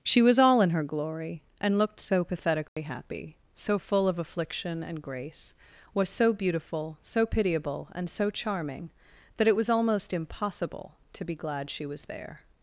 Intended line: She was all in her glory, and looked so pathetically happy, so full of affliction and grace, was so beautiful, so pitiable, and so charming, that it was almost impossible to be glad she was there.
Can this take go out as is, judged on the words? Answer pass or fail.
pass